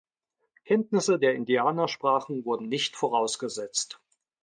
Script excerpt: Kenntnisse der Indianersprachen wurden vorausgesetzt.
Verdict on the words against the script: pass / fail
fail